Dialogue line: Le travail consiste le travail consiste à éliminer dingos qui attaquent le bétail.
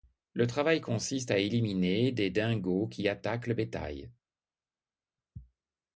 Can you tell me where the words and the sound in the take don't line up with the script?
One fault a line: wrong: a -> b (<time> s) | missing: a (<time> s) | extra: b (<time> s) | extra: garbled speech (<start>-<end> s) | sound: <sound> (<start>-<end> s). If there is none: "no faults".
missing: le travail consiste (1.3 s)
extra: des (2.1 s)